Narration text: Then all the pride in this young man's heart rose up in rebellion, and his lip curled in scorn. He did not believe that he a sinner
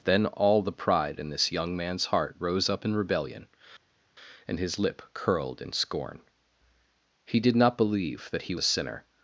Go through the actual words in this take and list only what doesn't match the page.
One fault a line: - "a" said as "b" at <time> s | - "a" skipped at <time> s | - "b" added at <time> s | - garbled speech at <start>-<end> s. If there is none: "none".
none